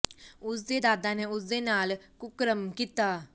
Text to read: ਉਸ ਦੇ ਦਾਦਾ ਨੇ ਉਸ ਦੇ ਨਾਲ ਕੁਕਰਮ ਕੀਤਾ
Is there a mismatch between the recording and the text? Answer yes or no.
no